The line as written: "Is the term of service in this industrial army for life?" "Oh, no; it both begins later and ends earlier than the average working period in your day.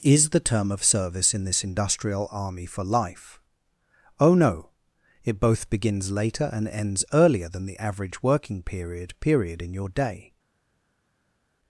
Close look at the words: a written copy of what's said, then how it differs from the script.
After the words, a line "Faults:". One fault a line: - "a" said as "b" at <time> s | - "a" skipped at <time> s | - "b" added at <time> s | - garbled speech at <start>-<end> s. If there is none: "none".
"Is the term of service in this industrial army for life?" "Oh, no; it both begins later and ends earlier than the average working period period in your day.
Faults:
- "period" added at 9.2 s